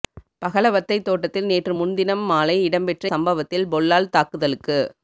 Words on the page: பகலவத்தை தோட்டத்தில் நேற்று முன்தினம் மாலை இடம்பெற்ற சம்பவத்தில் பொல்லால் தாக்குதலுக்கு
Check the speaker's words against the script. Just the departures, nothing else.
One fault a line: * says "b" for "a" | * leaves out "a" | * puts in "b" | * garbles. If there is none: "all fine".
all fine